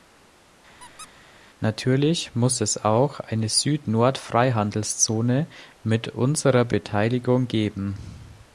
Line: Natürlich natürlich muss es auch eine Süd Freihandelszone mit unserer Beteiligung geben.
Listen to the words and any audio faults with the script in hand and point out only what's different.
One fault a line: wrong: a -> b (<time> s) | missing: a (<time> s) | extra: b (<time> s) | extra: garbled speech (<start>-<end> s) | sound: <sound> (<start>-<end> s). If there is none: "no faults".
sound: squeak (0.8-1.1 s)
missing: natürlich (2.3 s)
extra: Nord (3.9 s)